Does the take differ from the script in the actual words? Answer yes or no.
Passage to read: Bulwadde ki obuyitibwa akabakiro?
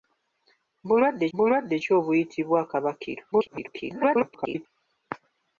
yes